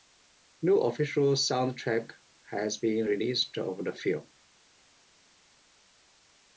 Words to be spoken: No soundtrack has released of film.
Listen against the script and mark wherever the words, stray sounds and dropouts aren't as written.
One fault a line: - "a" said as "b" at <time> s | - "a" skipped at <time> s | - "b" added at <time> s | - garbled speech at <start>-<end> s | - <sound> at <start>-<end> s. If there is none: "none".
- "official" added at 0.8 s
- "been" added at 2.8 s
- "the" added at 3.8 s